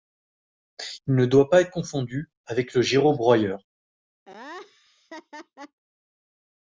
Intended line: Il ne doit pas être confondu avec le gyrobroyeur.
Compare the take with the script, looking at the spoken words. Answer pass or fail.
pass